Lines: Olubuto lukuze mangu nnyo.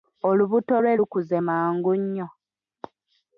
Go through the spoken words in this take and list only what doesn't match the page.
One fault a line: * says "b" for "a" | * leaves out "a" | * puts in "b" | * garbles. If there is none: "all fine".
* puts in "lwe"